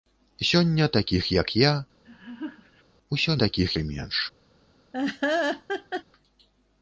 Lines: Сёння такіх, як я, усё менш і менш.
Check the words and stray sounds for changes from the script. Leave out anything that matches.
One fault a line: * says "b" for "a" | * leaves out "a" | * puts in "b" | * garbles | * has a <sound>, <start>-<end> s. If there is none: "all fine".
* has a laugh, 2.0-2.8 s
* says "такіх" for "менш"
* has a laugh, 4.9-6.0 s